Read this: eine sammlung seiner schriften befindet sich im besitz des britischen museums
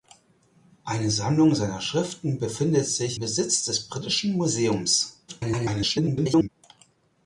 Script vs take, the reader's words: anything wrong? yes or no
yes